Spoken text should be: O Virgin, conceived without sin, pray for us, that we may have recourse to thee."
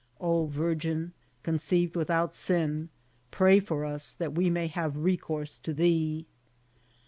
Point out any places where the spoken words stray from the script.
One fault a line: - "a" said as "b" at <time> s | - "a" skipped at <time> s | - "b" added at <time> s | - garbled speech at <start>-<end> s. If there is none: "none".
none